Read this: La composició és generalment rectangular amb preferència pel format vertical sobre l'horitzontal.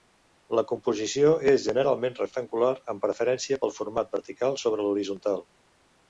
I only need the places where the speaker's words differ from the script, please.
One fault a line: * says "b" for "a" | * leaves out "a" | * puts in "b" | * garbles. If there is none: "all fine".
all fine